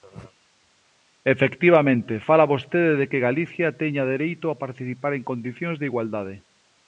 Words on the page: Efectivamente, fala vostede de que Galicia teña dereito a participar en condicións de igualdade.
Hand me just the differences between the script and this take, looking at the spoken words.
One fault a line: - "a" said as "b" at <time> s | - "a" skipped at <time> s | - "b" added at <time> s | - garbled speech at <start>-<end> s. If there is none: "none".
none